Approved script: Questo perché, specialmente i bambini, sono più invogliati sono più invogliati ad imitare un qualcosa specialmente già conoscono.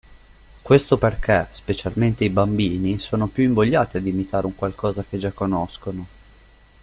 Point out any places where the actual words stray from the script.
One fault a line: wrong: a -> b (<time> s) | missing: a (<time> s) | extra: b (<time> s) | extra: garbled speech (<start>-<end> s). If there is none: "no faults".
missing: sono più invogliati (4.0 s)
wrong: specialmente -> che (5.0 s)